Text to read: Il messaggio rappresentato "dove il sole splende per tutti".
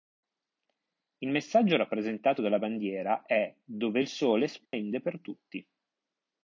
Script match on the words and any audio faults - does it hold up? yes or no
no